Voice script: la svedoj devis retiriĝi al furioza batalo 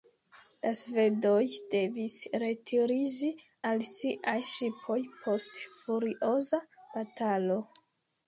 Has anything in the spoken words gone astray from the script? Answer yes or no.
yes